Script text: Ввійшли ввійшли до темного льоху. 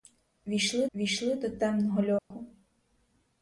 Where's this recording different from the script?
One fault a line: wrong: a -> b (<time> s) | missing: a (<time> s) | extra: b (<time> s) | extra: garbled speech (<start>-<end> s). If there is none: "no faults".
no faults